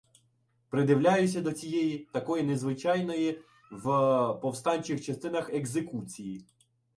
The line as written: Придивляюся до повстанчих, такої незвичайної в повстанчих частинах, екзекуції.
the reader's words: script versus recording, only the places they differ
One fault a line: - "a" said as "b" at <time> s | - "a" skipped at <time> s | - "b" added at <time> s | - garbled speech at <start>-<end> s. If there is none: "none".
- "повстанчих" said as "цієї" at 1.5 s